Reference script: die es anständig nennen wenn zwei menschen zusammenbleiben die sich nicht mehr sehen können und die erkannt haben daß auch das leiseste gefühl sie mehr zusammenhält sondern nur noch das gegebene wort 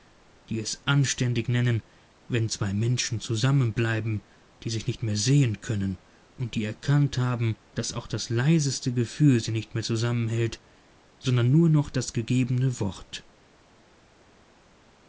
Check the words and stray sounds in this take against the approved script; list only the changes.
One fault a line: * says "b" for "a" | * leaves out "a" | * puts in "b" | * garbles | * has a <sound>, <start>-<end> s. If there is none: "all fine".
* puts in "nicht"